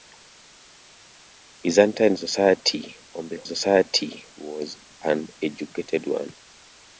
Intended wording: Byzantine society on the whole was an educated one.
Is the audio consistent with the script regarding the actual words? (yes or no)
no